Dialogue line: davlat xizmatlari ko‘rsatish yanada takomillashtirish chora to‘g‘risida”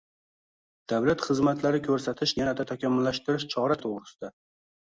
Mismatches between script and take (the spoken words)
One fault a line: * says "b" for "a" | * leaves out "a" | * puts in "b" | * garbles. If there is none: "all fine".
all fine